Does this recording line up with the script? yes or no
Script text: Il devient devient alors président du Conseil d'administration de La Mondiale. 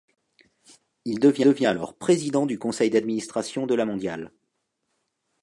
yes